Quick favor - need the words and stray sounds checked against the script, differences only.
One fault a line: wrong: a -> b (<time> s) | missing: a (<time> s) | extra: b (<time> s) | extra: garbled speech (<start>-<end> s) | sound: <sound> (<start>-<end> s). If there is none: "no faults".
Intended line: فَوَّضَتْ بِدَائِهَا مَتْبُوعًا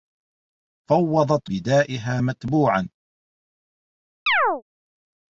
sound: chirp (4.3-4.6 s)